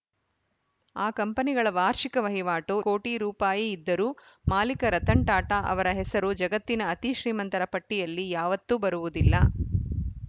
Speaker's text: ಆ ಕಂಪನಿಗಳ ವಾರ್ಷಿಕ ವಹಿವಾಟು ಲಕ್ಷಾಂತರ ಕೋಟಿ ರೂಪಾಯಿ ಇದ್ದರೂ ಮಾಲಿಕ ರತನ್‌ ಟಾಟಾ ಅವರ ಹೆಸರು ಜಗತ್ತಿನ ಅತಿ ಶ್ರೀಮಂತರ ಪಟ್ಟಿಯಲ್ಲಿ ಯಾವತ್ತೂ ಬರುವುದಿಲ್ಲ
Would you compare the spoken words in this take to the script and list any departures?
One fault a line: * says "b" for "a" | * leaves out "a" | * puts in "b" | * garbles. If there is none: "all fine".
* leaves out "ಲಕ್ಷಾಂತರ"